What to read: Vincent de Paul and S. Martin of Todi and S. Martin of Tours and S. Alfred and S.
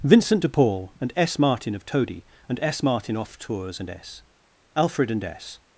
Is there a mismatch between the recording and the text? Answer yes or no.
yes